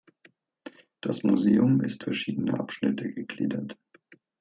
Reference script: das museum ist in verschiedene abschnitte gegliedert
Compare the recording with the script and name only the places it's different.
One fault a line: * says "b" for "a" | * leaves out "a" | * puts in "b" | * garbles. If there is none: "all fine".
* leaves out "in"